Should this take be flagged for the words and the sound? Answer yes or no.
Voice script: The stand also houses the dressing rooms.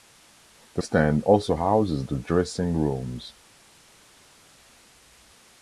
no